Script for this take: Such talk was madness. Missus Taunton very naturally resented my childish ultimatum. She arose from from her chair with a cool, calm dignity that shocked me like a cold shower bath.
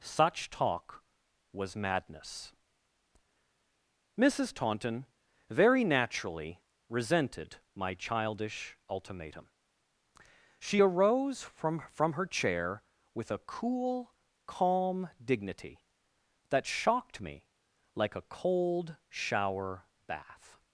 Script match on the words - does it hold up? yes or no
yes